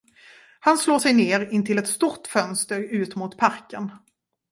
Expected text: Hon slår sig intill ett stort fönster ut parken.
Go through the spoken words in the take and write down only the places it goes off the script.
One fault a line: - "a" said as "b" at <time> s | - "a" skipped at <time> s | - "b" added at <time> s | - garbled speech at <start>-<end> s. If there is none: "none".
- "Hon" said as "Han" at 0.6 s
- "ner" added at 1.1 s
- "mot" added at 3.2 s